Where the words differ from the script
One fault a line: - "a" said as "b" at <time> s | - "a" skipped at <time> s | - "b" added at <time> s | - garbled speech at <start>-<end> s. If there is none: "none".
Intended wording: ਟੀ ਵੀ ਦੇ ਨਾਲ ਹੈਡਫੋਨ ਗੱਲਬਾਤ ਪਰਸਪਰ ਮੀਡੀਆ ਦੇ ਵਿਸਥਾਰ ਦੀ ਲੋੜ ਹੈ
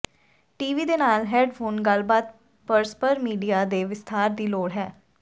none